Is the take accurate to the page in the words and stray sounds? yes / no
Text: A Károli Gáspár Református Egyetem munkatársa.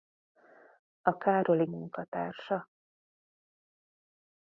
no